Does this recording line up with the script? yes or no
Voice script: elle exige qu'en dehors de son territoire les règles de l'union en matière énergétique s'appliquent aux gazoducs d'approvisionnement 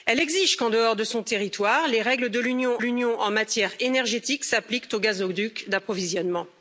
no